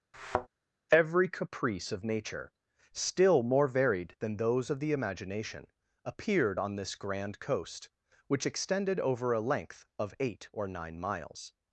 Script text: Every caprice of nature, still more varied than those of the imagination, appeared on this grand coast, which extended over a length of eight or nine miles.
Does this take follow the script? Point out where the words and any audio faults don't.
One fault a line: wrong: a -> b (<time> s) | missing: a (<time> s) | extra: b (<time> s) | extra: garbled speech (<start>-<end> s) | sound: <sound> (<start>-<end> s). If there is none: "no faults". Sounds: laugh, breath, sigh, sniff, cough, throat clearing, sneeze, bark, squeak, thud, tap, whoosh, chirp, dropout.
sound: thud (0.1-0.5 s)